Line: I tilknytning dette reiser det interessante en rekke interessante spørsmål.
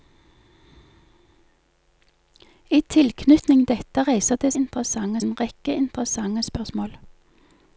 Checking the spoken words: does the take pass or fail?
pass